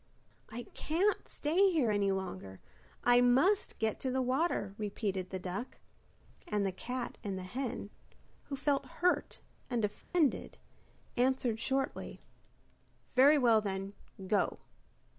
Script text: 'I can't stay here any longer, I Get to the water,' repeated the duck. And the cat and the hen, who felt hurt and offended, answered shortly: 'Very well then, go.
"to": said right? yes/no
yes